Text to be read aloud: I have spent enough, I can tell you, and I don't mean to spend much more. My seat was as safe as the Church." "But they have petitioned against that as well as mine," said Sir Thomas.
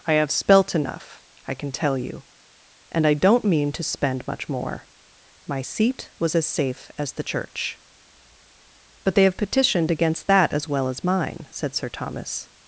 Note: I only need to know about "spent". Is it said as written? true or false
false